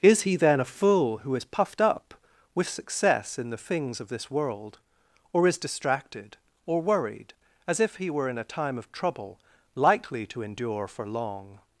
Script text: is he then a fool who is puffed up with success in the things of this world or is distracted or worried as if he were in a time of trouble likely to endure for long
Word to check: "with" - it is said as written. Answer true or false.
true